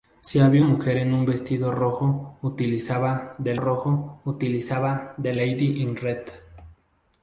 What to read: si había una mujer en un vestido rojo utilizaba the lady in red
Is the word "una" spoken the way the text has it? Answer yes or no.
no